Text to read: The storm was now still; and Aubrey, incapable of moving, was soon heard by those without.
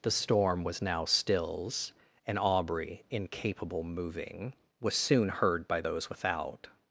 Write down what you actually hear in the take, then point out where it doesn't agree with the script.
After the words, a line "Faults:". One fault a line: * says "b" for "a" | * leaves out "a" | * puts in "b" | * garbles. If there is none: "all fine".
The storm was now stills; and Aubrey, incapable moving, was soon heard by those without.
Faults:
* says "stills" for "still"
* leaves out "of"